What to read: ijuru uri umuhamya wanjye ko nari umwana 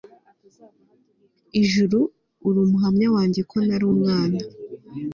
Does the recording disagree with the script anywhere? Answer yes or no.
no